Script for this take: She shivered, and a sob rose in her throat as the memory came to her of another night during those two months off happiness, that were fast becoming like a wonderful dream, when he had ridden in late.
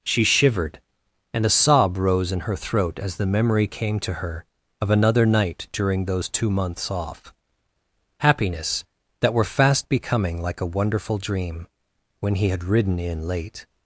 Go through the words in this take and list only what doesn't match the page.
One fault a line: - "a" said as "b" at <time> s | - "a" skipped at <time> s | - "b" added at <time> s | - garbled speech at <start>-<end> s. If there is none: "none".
none